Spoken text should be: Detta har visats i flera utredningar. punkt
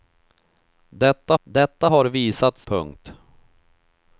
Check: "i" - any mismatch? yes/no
yes